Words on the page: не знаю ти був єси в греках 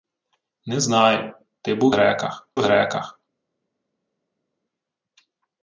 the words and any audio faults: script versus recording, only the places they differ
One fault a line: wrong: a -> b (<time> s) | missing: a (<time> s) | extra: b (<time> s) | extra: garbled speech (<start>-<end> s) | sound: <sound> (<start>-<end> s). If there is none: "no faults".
wrong: єси -> греках (1.9 s)